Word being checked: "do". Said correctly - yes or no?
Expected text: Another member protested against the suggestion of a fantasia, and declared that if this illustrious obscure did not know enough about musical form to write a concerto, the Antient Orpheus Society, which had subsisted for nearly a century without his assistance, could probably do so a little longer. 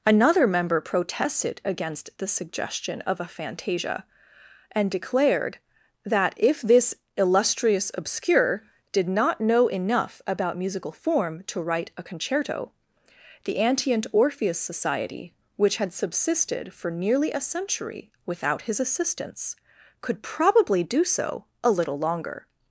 yes